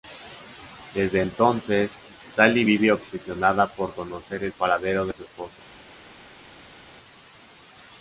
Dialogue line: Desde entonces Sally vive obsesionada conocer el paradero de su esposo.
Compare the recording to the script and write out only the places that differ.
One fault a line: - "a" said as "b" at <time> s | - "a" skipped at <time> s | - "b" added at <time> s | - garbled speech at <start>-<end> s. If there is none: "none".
- "por" added at 3.7 s